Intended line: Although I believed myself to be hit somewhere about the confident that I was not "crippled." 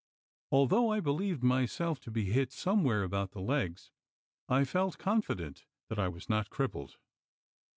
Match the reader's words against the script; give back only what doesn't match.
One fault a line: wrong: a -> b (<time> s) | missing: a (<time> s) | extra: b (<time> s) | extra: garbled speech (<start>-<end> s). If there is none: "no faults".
extra: legs I felt (3.4 s)